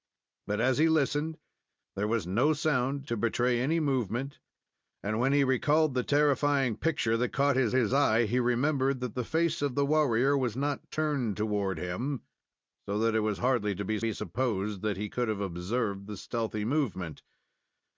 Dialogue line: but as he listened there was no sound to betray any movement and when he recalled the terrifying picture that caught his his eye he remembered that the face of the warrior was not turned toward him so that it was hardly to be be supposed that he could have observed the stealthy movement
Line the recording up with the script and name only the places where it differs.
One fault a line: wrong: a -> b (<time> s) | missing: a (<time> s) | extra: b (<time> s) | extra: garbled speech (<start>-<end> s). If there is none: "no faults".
no faults